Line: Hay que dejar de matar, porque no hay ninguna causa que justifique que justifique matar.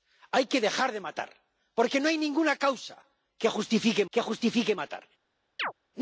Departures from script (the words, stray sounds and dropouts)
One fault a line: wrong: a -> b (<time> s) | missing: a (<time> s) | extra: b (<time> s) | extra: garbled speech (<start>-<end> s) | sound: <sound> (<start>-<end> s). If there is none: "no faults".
sound: chirp (5.6-5.7 s)